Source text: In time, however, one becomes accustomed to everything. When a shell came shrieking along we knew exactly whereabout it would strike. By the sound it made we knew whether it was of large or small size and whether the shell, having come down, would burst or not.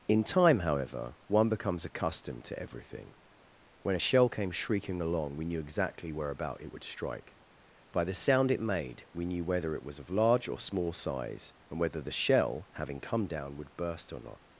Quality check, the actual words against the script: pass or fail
pass